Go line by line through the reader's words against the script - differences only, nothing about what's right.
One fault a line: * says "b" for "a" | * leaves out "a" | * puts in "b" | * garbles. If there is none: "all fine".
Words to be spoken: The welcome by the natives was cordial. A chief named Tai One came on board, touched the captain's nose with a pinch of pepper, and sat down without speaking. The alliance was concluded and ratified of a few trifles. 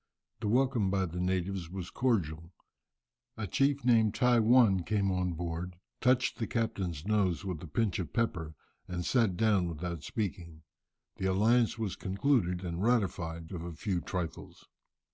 all fine